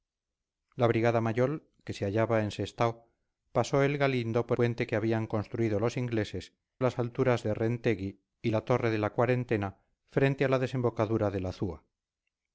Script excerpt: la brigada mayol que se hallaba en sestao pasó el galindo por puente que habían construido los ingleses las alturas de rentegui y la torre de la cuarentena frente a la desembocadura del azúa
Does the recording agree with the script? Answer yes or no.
yes